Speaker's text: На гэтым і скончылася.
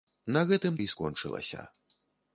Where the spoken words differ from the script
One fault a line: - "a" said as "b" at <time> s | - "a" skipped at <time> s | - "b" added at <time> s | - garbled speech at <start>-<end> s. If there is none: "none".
none